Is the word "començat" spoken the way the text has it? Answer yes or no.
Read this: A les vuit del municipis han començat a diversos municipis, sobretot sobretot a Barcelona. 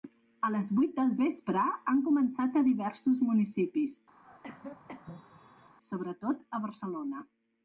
yes